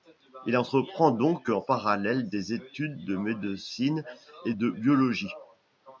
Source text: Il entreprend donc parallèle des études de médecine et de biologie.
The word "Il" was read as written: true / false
true